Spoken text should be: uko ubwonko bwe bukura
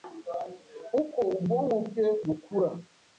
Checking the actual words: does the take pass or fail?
pass